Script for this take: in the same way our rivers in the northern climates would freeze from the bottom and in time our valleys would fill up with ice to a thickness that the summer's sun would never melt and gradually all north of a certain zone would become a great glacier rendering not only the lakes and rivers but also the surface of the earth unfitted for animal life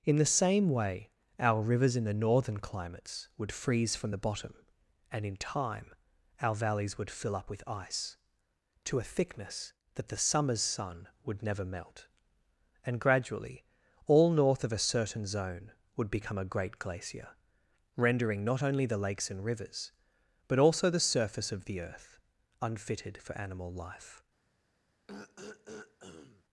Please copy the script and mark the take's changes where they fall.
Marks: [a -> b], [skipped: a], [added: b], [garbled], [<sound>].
in the same way our rivers in the northern climates would freeze from the bottom and in time our valleys would fill up with ice to a thickness that the summer's sun would never melt and gradually all north of a certain zone would become a great glacier rendering not only the lakes and rivers but also the surface of the earth unfitted for animal life [throat clearing]